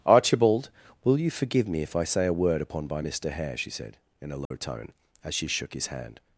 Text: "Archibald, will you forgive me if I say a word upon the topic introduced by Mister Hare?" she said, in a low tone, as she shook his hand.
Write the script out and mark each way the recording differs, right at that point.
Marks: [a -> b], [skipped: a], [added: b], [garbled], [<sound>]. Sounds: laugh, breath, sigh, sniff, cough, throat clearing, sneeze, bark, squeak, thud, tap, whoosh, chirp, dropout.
"Archibald, will you forgive me if I say a word upon [skipped: the topic introduced] by Mister Hare?" she said, in a low [dropout] tone, as she shook his hand.